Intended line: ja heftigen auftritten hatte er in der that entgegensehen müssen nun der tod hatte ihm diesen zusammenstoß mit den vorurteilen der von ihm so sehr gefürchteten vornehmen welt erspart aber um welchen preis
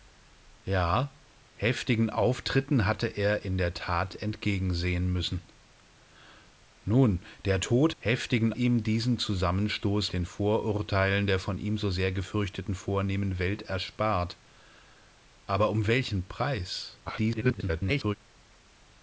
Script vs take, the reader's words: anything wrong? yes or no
yes